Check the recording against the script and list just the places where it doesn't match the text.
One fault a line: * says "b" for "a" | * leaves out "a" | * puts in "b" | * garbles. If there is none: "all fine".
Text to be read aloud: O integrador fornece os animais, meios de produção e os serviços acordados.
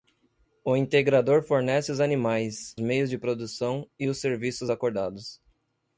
all fine